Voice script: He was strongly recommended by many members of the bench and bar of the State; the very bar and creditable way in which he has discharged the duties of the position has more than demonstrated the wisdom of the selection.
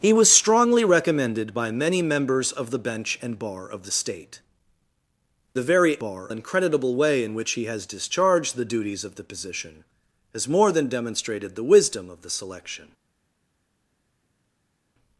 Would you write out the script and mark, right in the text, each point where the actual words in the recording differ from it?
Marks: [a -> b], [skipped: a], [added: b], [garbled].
He was strongly recommended by many members of the bench and bar of the State; the very bar and creditable way in which he has discharged the duties of the position has more than demonstrated the wisdom of the selection.